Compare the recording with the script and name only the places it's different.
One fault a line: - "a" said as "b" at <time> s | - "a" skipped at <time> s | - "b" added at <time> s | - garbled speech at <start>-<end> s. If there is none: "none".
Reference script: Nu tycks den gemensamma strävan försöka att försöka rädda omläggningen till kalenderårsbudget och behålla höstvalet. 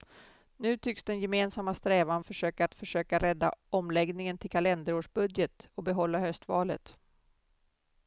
none